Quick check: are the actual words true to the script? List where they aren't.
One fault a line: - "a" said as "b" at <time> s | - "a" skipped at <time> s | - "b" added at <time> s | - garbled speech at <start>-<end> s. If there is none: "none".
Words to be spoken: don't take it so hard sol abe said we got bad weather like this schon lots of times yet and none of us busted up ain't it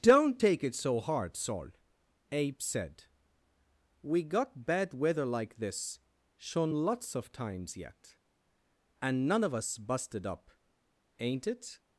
none